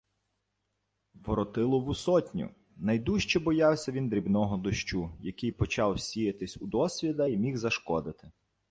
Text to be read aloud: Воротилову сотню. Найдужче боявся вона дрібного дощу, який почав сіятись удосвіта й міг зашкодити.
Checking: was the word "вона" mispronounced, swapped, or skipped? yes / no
yes